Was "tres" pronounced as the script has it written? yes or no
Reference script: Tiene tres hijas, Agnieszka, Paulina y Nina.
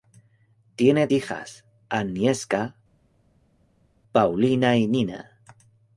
no